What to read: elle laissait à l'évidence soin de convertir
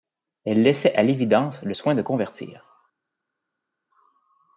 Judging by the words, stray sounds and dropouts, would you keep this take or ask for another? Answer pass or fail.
fail